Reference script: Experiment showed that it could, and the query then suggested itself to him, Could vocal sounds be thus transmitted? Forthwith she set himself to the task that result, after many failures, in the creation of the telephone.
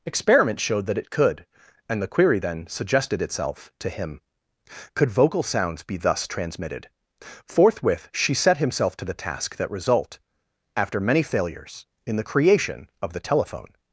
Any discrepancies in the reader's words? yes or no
no